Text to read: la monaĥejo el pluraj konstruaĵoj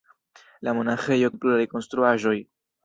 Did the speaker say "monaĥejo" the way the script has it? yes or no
yes